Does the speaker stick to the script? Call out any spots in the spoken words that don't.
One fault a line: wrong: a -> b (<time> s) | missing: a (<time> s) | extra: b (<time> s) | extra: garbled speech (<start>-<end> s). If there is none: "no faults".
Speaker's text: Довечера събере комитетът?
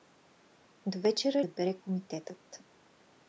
no faults